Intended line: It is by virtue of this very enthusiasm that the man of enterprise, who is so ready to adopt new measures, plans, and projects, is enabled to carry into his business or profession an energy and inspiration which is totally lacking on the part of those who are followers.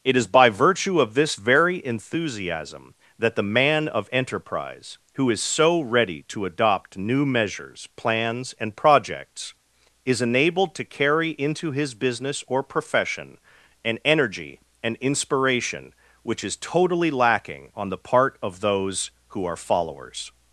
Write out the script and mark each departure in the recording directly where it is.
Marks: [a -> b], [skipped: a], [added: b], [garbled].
It is by virtue of this very enthusiasm that the man of enterprise, who is so ready to adopt new measures, plans, and projects, is enabled to carry into his business or profession an energy and inspiration which is totally lacking on the part of those who are followers.